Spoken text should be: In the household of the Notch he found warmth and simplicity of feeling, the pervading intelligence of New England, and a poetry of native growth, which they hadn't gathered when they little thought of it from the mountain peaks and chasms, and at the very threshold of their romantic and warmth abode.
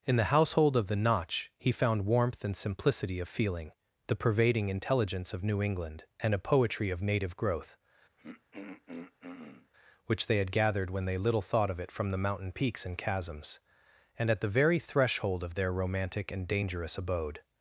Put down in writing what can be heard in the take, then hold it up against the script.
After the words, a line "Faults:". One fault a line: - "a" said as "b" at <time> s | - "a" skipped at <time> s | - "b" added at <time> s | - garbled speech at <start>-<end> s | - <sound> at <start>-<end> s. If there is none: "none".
In the household of the Notch he found warmth and simplicity of feeling, the pervading intelligence of New England, and a poetry of native growth, which they had gathered when they little thought of it from the mountain peaks and chasms, and at the very threshold of their romantic and dangerous abode.
Faults:
- throat clearing at 8.2-9.7 s
- "hadn't" said as "had" at 10.4 s
- "warmth" said as "dangerous" at 16.5 s